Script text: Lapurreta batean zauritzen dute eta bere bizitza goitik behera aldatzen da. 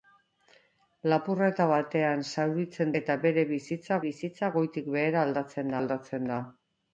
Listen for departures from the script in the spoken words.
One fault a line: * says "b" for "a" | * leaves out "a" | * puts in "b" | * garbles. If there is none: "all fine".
* leaves out "dute"
* puts in "bizitza"
* puts in "aldatzen"